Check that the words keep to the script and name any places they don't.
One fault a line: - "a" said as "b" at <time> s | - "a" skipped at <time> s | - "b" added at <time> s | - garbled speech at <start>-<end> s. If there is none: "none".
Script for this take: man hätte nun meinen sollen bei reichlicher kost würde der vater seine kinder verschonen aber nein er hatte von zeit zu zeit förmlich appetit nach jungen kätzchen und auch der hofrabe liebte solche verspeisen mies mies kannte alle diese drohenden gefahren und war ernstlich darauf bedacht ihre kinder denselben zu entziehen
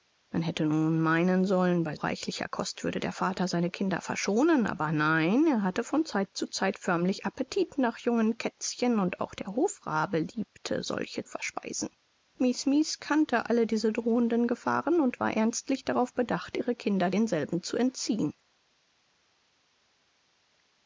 none